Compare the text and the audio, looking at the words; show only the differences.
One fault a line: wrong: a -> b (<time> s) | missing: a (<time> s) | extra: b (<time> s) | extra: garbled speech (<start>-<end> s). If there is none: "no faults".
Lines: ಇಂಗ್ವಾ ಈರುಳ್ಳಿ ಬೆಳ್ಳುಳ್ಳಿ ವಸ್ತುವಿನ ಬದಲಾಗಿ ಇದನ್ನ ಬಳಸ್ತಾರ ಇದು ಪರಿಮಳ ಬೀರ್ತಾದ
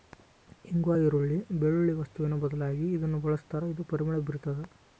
no faults